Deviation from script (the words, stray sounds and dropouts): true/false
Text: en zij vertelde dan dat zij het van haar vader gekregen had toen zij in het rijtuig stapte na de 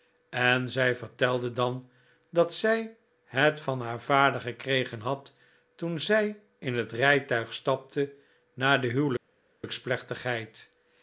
false